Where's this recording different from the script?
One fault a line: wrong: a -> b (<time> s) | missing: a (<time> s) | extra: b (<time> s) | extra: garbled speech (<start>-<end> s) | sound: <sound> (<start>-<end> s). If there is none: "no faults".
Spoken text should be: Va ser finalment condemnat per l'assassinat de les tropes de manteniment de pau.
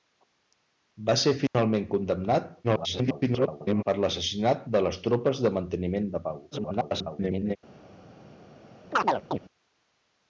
sound: dropout (1.5-1.5 s)
extra: garbled speech (2.6-3.8 s)
extra: garbled speech (6.5-7.6 s)
sound: chirp (8.9-9.4 s)